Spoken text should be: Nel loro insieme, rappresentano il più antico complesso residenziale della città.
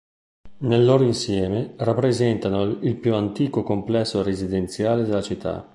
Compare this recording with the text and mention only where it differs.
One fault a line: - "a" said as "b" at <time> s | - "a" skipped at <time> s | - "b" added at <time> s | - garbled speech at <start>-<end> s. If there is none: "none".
none